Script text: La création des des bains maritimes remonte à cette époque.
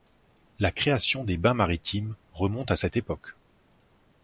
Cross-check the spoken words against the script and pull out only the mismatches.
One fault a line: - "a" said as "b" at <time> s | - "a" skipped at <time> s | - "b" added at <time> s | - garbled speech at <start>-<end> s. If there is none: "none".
- "des" skipped at 1.4 s